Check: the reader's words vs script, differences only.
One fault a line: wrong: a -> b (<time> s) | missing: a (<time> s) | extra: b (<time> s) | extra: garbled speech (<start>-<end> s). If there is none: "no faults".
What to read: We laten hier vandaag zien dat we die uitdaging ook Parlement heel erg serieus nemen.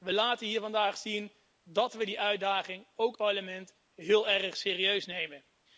no faults